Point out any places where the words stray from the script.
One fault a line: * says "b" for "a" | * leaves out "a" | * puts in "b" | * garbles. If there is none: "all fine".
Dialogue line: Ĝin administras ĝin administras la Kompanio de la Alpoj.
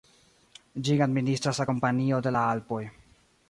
* leaves out "ĝin administras"